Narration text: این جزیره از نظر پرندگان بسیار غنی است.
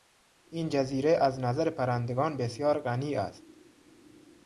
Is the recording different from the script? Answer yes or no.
no